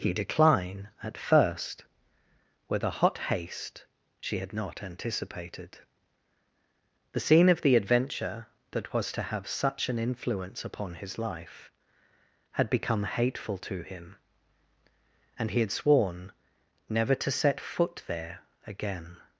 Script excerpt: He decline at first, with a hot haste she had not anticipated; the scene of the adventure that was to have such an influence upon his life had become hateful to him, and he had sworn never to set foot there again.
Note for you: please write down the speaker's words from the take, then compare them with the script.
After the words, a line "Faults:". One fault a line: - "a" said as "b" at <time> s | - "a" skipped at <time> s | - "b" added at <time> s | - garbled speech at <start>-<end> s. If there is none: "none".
He decline at first, with a hot haste she had not anticipated; the scene of the adventure that was to have such an influence upon his life had become hateful to him, and he had sworn never to set foot there again.
Faults:
none